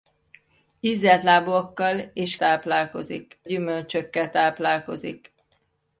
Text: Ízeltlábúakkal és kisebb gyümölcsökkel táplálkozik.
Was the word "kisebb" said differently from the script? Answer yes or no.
yes